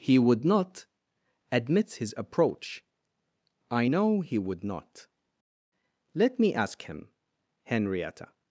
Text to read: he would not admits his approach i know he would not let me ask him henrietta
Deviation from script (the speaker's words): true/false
false